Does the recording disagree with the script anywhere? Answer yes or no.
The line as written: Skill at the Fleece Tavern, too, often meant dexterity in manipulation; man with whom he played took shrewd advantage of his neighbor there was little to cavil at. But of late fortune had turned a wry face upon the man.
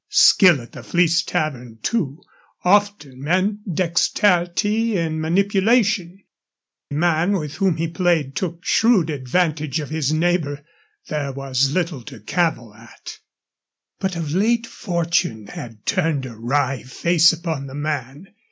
no